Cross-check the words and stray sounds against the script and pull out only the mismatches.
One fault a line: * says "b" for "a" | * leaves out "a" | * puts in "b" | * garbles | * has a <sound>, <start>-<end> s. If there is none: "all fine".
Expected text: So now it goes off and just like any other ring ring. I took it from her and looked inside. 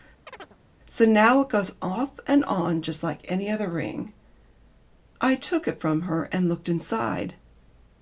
* has a chirp, 0.3-0.6 s
* puts in "on"
* leaves out "ring"